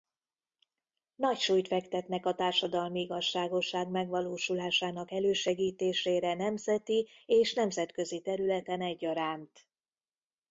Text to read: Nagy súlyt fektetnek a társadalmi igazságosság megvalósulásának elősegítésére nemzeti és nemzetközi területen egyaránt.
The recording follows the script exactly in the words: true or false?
true